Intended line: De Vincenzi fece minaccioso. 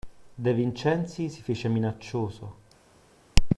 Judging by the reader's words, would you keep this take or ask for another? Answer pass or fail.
fail